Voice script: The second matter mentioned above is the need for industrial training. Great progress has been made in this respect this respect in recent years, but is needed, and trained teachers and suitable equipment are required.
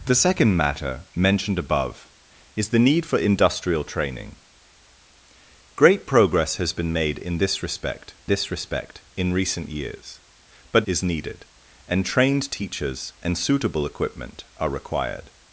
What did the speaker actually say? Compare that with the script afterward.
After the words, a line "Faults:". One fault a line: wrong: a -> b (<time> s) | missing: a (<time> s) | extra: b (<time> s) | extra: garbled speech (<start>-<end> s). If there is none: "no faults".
The second matter mentioned above is the need for industrial training. Great progress has been made in this respect this respect in recent years, but is needed, and trained teachers and suitable equipment are required.
Faults:
no faults